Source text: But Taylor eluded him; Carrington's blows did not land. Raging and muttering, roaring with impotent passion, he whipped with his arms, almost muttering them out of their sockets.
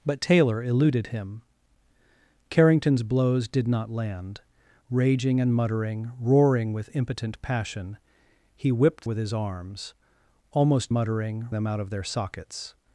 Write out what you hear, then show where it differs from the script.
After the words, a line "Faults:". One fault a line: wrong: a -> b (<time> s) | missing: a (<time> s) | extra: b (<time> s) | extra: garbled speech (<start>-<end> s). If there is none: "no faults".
But Taylor eluded him; Carrington's blows did not land. Raging and muttering, roaring with impotent passion, he whipped with his arms, almost muttering them out of their sockets.
Faults:
no faults